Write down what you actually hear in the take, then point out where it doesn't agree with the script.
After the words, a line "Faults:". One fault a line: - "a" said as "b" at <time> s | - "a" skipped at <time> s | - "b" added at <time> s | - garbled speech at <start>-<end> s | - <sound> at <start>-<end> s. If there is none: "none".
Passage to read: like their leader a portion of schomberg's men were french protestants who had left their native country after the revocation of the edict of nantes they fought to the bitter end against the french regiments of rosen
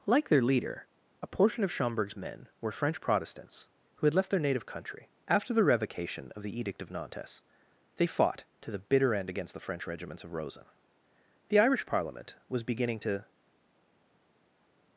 like their leader a portion of schomberg's men were french protestants who had left their native country after the revocation of the edict of nantes they fought to the bitter end against the french regiments of rosen the irish parliament was beginning to
Faults:
- "the irish parliament was beginning to" added at 11.5 s